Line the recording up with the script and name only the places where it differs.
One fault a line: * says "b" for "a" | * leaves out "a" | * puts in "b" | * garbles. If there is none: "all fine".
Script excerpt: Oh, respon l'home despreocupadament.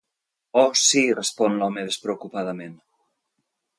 * puts in "sí"